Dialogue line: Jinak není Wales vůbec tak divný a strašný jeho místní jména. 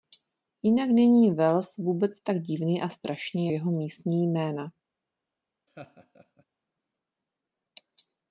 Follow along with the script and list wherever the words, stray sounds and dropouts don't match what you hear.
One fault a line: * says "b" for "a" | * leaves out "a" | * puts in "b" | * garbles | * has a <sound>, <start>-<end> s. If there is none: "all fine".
* has a laugh, 5.7-6.4 s